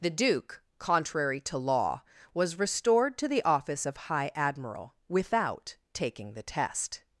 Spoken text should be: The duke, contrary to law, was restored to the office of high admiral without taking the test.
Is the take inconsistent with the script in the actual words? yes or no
no